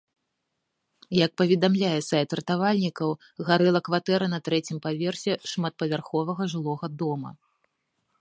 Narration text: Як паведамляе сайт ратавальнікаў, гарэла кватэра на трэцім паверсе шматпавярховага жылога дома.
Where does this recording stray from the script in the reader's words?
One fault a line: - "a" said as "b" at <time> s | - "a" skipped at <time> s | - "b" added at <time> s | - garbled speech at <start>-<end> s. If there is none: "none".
none